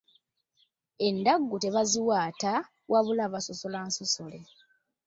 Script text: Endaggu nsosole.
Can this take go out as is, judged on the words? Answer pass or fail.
fail